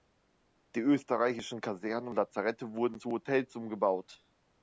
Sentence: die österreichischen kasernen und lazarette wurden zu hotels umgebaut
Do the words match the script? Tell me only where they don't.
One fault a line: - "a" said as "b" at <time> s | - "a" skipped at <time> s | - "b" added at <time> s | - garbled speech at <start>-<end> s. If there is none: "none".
none